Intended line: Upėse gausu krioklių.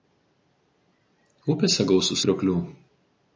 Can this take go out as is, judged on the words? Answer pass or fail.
pass